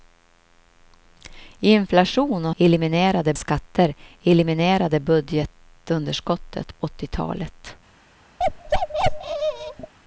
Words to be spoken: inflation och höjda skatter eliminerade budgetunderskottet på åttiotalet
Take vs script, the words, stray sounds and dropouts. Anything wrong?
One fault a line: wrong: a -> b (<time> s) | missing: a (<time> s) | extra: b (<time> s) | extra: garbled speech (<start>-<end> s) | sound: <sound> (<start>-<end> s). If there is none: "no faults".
wrong: höjda -> eliminerade (2.6 s)
missing: på (6.8 s)
sound: bark (8.4-9.9 s)